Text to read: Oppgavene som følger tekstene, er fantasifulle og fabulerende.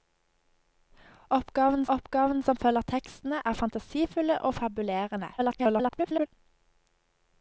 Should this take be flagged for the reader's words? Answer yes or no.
yes